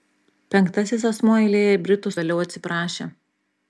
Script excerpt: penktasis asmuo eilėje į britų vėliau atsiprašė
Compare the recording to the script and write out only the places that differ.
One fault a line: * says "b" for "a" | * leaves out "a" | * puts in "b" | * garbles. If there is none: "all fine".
all fine